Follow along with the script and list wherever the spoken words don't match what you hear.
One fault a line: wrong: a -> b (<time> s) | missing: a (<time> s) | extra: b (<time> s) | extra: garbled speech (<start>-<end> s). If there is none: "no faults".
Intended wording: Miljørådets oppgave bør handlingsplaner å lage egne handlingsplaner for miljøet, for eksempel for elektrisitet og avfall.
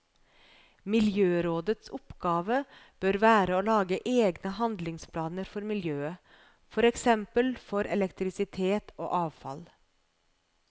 wrong: handlingsplaner -> være (3.2 s)